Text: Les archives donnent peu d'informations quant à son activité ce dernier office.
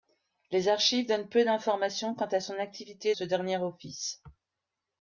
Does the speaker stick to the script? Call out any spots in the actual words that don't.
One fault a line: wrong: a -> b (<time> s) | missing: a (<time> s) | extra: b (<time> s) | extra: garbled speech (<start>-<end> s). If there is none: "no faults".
no faults